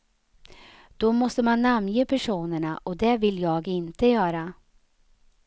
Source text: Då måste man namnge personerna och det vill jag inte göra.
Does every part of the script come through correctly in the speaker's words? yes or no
yes